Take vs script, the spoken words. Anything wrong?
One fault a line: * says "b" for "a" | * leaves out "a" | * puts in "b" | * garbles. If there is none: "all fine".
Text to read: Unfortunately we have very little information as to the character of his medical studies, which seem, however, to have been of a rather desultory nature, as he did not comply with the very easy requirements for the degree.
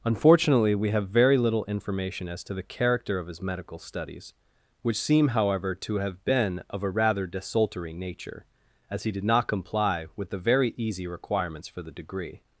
all fine